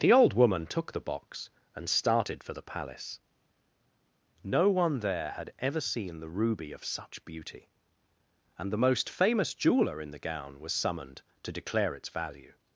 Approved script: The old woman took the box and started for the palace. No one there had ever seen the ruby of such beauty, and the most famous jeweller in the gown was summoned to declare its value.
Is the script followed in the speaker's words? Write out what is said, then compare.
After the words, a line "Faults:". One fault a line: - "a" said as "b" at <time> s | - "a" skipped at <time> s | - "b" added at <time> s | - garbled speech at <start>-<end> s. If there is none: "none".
The old woman took the box and started for the palace. No one there had ever seen the ruby of such beauty, and the most famous jeweller in the gown was summoned to declare its value.
Faults:
none